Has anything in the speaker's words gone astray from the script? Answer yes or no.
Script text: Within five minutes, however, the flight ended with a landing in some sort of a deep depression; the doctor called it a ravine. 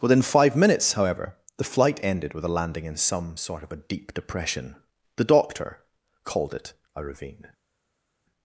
no